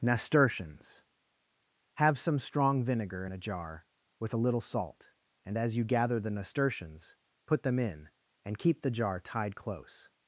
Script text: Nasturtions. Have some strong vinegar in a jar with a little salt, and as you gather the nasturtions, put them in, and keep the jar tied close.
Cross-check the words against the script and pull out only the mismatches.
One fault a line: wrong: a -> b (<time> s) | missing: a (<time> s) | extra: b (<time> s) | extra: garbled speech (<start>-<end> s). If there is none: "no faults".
no faults